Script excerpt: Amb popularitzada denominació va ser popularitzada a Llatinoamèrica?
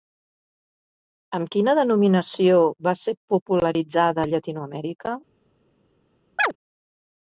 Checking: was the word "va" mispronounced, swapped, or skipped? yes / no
no